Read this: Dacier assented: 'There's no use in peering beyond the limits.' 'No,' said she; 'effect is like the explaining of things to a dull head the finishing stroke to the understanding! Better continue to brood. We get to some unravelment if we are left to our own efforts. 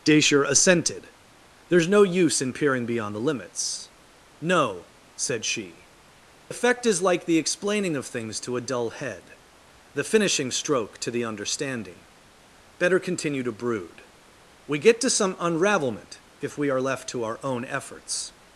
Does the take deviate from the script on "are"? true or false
false